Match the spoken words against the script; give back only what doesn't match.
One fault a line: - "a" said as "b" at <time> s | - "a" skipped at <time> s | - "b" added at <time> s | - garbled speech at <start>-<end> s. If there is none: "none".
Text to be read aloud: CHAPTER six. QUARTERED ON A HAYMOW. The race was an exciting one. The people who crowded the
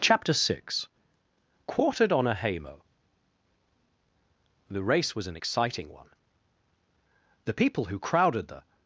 none